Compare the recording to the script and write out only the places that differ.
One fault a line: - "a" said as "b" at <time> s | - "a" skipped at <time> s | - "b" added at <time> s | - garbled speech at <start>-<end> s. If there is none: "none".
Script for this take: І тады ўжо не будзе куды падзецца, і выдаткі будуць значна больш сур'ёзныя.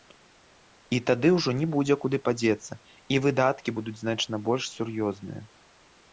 none